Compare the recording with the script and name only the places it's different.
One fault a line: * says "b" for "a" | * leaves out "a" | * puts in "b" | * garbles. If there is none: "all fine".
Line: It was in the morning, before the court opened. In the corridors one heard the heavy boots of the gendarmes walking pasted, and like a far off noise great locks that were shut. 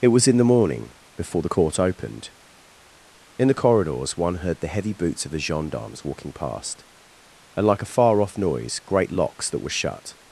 * says "past" for "pasted"